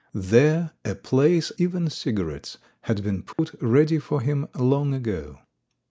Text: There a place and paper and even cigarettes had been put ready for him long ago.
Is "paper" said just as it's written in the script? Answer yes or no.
no